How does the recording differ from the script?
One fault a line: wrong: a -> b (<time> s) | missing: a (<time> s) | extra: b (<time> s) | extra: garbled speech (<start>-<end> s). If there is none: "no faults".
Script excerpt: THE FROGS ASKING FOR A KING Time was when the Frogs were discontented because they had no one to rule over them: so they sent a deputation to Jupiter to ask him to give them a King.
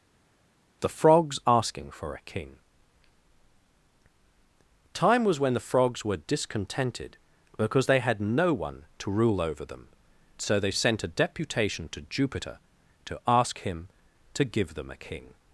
no faults